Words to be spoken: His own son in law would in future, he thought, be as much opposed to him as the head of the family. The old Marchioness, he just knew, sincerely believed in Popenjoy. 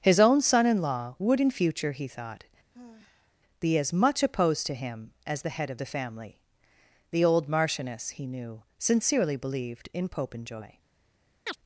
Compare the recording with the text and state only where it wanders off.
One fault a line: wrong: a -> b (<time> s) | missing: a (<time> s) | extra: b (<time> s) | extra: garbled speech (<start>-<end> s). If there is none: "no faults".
missing: just (8.3 s)